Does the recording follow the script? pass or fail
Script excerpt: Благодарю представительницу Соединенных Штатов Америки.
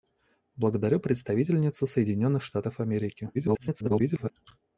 fail